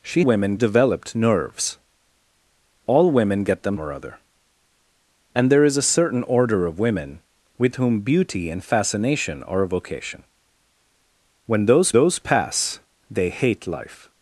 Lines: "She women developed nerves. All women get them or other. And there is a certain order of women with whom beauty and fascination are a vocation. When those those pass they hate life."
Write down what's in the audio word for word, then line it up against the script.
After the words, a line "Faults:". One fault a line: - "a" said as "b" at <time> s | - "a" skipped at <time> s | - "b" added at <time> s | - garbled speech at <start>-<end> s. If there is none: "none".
"She women developed nerves. All women get them or other. And there is a certain order of women with whom beauty and fascination are a vocation. When those those pass they hate life."
Faults:
none